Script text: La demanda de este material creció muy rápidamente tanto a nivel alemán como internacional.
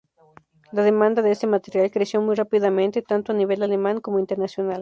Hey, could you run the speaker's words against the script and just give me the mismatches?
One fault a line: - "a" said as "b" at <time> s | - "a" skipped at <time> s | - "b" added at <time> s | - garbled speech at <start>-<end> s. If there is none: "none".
none